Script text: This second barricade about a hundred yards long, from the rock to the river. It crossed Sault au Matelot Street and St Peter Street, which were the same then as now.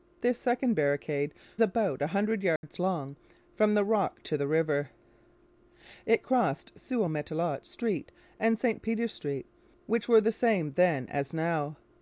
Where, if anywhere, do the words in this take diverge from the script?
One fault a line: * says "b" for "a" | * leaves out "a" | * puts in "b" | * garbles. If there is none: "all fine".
all fine